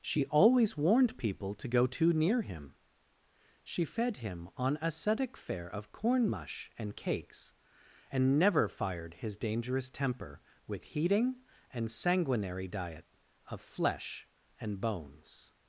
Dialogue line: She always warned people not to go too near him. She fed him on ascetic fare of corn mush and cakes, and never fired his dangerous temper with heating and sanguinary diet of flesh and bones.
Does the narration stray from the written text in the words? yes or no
yes